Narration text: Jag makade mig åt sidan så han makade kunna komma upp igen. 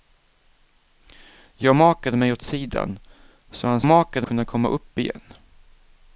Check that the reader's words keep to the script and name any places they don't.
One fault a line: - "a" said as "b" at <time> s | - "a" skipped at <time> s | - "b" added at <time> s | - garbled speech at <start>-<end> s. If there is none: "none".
none